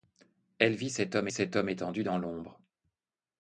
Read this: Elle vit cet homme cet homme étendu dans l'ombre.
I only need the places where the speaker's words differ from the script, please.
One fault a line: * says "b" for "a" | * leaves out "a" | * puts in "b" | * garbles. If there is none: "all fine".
all fine